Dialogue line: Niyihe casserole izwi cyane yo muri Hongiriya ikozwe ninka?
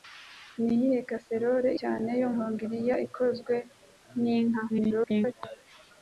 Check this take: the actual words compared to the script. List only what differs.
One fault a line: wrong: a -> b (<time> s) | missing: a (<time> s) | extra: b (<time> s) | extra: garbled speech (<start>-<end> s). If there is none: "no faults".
missing: izwi (1.7 s)
missing: muri (2.3 s)
extra: garbled speech (4.7-5.3 s)